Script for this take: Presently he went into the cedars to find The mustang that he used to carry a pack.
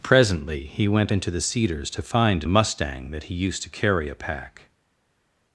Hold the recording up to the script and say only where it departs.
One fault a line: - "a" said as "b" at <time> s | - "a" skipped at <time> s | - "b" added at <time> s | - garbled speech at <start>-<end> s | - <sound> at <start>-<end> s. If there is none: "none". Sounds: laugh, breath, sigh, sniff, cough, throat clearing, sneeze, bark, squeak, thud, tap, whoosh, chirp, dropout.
none